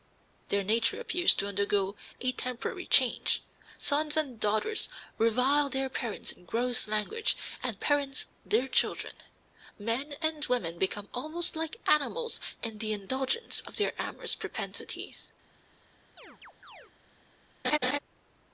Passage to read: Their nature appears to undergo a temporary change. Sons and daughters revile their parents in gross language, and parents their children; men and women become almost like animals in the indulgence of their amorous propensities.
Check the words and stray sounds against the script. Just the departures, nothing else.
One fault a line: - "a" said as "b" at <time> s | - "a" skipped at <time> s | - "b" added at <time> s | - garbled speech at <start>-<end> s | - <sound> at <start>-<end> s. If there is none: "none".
- chirp at 16.2-16.9 s
- laugh at 17.6-18.0 s